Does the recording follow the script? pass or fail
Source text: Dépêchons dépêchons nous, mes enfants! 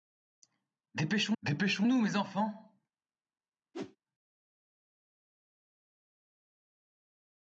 pass